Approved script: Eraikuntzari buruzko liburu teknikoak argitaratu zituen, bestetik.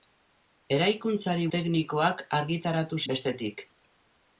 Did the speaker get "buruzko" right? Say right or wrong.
wrong